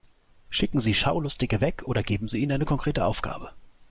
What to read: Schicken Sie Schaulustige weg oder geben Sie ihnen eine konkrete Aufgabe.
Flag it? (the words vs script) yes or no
no